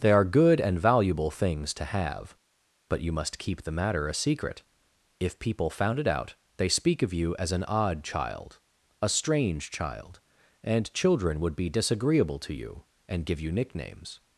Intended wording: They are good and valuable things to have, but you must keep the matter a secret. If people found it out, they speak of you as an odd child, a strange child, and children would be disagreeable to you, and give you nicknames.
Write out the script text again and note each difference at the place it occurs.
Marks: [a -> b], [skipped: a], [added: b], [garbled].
They are good and valuable things to have, but you must keep the matter a secret. If people found it out, they speak of you as an odd child, a strange child, and children would be disagreeable to you, and give you nicknames.